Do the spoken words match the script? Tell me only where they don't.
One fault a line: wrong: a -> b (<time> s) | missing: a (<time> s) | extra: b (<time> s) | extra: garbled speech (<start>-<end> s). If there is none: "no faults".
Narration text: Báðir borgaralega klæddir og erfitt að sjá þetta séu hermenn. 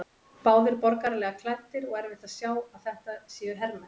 extra: að (2.5 s)